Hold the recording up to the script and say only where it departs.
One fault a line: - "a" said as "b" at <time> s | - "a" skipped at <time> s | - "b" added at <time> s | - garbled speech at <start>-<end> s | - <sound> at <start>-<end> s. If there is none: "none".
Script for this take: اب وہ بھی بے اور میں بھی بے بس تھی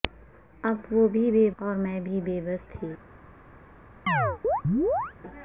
- chirp at 4.1-5.1 s